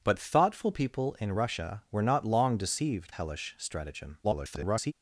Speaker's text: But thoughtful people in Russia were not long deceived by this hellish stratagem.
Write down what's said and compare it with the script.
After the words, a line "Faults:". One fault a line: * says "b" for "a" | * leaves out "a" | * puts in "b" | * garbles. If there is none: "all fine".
But thoughtful people in Russia were not long deceived hellish stratagem. [garbled]
Faults:
* leaves out "by this"
* garbles